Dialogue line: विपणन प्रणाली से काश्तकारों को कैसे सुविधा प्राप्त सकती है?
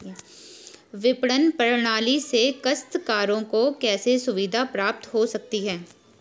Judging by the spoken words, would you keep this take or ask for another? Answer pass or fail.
fail